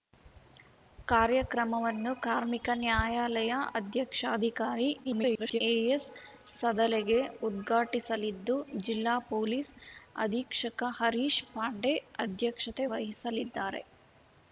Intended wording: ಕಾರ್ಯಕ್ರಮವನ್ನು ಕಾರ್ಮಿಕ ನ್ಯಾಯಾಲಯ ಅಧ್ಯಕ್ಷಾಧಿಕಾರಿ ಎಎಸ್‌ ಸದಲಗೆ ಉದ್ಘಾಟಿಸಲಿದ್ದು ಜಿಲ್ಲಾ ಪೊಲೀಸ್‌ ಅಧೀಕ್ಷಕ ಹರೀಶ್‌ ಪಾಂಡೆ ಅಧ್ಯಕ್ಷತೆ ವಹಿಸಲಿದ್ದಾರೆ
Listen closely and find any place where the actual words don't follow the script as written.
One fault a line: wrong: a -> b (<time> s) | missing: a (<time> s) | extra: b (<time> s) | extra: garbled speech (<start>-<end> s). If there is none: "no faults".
extra: garbled speech (5.0-5.6 s)